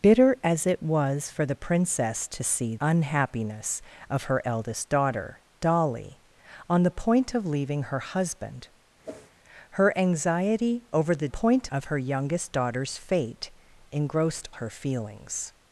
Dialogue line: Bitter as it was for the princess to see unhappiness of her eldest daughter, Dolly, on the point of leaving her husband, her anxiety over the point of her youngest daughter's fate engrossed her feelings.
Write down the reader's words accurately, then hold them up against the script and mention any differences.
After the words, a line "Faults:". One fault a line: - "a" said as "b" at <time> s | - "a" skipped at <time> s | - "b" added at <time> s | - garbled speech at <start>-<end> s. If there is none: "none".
Bitter as it was for the princess to see unhappiness of her eldest daughter, Dolly, on the point of leaving her husband, her anxiety over the point of her youngest daughter's fate engrossed her feelings.
Faults:
none